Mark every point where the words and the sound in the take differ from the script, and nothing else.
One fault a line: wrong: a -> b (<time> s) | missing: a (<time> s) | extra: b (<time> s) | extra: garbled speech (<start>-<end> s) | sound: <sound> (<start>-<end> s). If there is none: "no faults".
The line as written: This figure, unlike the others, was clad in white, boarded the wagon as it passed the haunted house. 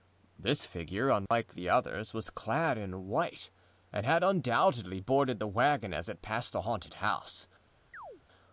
sound: dropout (1.3-1.3 s)
extra: and had undoubtedly (3.9 s)
sound: chirp (7.9-8.2 s)